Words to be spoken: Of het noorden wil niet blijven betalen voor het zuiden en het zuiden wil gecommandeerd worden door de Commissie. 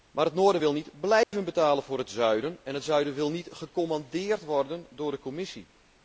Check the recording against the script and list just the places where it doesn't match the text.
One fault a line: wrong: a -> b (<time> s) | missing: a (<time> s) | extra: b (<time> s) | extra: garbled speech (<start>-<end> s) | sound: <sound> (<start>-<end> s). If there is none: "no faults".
wrong: Of -> Maar (0.1 s)
sound: dropout (1.2-1.3 s)
extra: niet (3.3 s)